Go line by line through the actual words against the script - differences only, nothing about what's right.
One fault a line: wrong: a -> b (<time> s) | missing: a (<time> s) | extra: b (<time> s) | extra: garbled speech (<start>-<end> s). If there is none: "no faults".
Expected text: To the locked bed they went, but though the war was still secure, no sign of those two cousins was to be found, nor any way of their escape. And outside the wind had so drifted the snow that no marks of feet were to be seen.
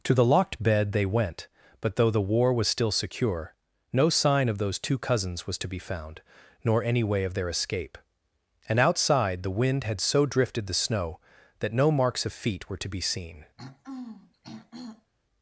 no faults